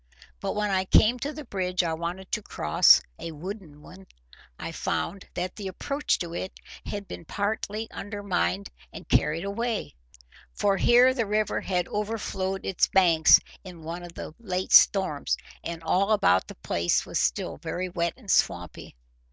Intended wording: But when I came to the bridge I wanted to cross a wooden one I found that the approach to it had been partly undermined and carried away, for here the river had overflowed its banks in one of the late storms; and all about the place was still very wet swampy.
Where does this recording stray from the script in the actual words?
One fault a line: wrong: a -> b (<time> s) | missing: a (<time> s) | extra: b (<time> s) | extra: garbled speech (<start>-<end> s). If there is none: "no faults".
extra: and (18.2 s)